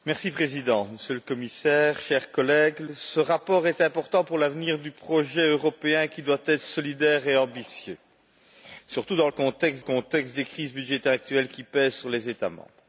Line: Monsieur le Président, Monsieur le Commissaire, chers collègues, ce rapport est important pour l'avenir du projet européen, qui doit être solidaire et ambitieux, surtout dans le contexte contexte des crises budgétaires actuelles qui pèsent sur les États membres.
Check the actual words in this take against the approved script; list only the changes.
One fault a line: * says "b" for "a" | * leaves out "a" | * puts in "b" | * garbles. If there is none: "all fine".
all fine